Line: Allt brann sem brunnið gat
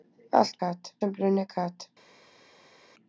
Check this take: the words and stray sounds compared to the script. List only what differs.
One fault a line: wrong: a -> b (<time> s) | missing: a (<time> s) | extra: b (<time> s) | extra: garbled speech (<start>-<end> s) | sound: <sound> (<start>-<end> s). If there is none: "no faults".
wrong: brann -> gat (0.6 s)